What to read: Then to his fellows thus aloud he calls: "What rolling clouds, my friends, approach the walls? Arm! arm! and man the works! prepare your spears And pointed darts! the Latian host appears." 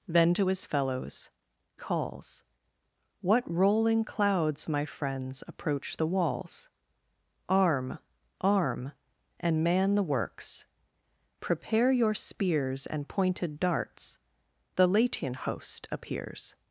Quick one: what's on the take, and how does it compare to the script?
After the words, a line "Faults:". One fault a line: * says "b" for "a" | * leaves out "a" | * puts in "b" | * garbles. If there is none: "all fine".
Then to his fellows calls: "What rolling clouds, my friends, approach the walls? Arm! arm! and man the works! prepare your spears And pointed darts! the Latian host appears."
Faults:
* leaves out "thus aloud he"